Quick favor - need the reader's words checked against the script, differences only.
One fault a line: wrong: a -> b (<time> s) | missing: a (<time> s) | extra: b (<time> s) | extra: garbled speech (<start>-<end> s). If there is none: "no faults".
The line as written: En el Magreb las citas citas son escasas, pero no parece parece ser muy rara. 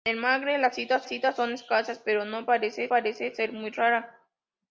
no faults